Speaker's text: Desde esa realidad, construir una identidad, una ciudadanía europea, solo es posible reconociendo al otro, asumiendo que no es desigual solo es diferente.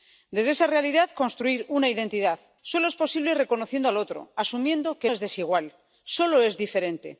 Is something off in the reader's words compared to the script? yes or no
yes